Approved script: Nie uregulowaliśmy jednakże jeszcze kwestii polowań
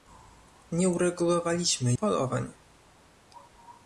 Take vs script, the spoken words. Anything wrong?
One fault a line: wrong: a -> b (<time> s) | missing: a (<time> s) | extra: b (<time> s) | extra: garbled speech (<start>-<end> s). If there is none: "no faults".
missing: jednakże jeszcze kwestii (1.9 s)